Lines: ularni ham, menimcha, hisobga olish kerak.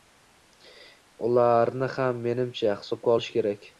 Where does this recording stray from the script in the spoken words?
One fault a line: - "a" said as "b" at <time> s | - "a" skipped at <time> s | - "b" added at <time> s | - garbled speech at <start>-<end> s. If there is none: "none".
none